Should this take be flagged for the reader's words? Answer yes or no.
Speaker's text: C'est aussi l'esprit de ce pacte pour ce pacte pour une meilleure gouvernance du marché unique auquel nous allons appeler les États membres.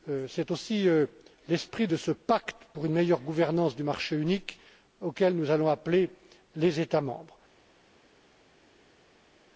yes